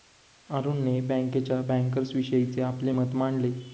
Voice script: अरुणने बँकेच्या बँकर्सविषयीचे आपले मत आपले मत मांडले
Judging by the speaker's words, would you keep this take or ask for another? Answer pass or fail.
fail